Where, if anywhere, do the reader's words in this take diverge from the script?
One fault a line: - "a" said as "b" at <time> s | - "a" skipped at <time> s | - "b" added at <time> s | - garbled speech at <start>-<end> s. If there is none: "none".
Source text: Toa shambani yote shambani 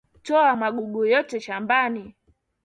- "shambani" said as "magugu" at 0.5 s